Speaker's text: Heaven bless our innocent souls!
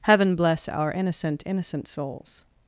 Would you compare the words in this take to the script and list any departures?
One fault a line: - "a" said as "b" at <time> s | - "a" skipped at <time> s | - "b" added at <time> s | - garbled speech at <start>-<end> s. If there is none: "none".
- "innocent" added at 1.4 s